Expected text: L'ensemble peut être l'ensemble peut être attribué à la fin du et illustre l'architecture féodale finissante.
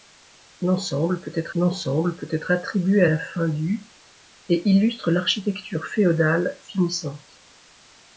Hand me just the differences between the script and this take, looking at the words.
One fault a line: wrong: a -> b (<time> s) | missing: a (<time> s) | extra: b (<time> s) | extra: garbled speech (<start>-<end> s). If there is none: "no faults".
no faults